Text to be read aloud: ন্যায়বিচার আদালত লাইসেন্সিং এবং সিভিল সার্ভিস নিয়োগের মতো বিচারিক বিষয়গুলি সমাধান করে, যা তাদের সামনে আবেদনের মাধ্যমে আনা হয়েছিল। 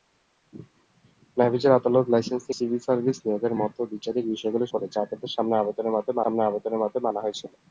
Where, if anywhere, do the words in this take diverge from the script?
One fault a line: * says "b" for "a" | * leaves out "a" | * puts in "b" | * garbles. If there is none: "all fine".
* leaves out "এবং"
* leaves out "সমাধান"
* puts in "সামনে আবেদনের মাধ্যমে"